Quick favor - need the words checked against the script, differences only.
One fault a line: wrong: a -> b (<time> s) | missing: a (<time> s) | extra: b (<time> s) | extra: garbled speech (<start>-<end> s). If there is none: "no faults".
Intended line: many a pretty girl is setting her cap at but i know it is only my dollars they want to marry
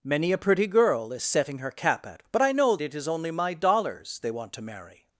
no faults